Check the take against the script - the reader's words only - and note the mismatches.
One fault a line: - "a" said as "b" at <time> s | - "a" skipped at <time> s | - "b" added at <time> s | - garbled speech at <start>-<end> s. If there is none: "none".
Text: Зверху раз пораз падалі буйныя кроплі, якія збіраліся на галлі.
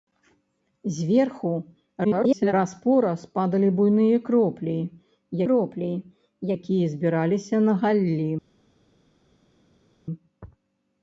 - garbled speech at 2.0-2.5 s
- "кроплі" added at 5.5 s